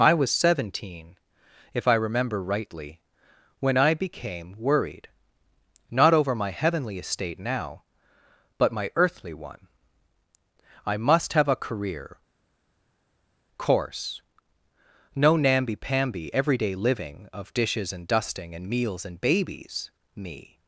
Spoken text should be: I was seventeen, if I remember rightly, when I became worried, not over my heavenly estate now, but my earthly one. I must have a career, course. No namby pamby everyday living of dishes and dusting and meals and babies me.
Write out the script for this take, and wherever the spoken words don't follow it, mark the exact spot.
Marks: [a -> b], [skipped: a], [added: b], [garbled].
I was seventeen, if I remember rightly, when I became worried, not over my heavenly estate now, but my earthly one. I must have a career, course. No namby pamby everyday living of dishes and dusting and meals and babies me.